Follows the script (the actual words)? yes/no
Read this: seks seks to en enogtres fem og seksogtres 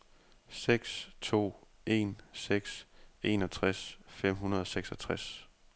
no